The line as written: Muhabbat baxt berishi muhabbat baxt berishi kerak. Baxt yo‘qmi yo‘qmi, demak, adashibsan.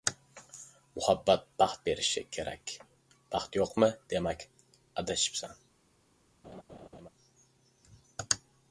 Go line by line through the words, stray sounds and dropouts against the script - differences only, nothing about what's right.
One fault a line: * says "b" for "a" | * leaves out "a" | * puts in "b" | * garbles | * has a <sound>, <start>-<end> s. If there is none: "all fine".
* leaves out "muhabbat baxt berishi"
* leaves out "yo‘qmi"
* has a laugh, 6.4-7.1 s